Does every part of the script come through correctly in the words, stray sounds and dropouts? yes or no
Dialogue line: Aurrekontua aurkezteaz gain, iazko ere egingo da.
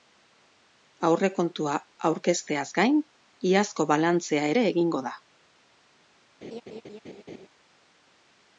no